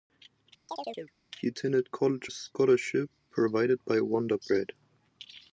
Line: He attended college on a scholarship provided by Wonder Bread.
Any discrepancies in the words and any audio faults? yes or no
yes